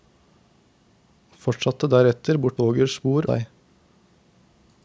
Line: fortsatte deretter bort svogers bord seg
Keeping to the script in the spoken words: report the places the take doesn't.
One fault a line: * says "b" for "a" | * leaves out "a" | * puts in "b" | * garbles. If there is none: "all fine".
all fine